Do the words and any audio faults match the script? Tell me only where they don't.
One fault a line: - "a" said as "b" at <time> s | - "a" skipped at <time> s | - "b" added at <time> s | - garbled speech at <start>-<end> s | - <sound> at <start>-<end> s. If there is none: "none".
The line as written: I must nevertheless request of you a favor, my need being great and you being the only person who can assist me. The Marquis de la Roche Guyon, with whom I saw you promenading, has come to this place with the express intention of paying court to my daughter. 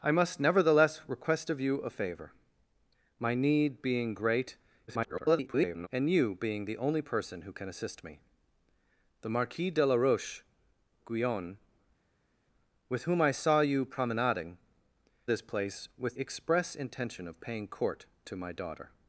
- garbled speech at 4.9-5.9 s
- "has come to" skipped at 14.6 s
- "the" skipped at 16.1 s